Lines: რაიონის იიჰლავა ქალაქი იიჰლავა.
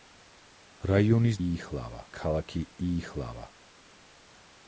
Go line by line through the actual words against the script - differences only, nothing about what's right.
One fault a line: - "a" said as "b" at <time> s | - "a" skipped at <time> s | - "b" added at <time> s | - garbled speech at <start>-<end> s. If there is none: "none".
none